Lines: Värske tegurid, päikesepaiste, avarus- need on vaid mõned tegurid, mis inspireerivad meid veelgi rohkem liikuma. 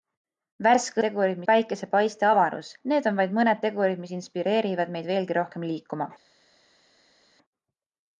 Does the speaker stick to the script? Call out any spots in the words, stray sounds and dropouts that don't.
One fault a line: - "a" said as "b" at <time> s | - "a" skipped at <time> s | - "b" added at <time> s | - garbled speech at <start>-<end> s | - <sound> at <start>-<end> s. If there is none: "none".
none